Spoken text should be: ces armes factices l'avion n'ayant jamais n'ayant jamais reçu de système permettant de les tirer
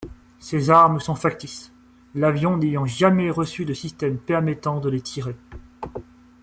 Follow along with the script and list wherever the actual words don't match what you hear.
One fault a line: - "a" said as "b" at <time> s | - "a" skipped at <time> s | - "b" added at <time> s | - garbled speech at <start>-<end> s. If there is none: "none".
- "sont" added at 1.0 s
- "n'ayant jamais" skipped at 3.3 s